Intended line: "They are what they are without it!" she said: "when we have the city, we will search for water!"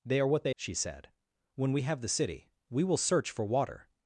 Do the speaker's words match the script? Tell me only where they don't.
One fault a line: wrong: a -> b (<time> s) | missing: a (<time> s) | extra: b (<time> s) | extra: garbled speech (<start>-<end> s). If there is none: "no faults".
missing: are without it (0.5 s)